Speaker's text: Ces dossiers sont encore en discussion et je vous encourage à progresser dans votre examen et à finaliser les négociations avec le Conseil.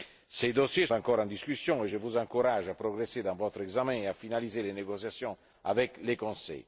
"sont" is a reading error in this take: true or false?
true